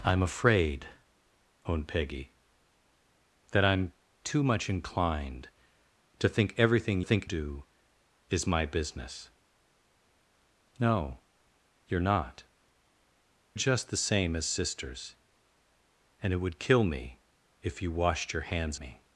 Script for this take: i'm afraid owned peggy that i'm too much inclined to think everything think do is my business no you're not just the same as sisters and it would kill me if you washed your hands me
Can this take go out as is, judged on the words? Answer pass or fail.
pass